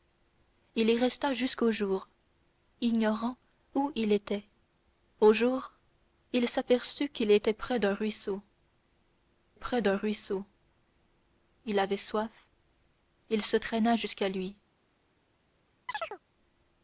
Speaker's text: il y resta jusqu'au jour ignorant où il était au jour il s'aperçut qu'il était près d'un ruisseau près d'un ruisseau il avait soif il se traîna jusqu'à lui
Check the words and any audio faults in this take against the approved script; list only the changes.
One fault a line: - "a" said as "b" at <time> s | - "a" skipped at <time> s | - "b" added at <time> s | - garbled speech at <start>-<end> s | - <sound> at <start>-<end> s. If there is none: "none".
- chirp at 15.9-16.2 s